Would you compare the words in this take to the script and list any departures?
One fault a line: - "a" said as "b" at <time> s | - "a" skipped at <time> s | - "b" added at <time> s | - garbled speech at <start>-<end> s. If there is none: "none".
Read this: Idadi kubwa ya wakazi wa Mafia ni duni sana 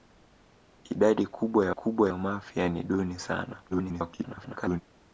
- "wakazi" said as "kubwa" at 1.7 s
- garbled speech at 3.7-4.8 s